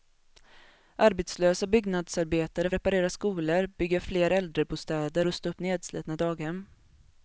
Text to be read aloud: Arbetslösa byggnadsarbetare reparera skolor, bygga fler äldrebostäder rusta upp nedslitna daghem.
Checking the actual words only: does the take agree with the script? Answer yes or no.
yes